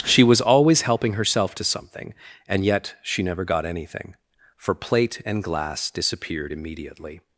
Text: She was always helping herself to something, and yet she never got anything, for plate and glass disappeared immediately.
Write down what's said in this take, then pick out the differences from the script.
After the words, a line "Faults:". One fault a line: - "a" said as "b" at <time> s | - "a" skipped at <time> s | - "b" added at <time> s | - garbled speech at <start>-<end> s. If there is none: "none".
She was always helping herself to something, and yet she never got anything, for plate and glass disappeared immediately.
Faults:
none